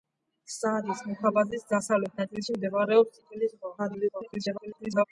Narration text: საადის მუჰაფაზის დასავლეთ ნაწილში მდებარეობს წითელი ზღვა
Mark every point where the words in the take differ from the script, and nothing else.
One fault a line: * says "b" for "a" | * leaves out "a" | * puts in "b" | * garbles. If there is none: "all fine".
* garbles